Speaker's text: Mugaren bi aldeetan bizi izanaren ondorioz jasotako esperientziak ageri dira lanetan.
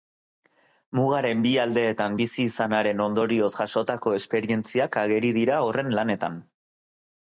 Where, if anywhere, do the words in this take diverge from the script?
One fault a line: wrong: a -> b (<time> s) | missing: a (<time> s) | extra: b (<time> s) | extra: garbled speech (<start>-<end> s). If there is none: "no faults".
extra: horren (5.7 s)